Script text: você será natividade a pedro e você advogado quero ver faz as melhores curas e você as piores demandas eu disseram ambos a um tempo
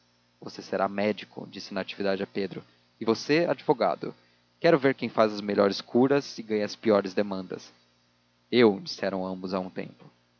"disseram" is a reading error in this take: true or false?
false